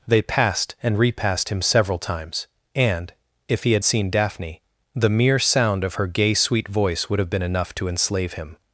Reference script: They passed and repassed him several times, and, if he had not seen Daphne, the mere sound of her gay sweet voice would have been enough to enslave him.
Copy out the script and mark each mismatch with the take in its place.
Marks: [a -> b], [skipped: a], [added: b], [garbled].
They passed and repassed him several times, and, if he had [skipped: not] seen Daphne, the mere sound of her gay sweet voice would have been enough to enslave him.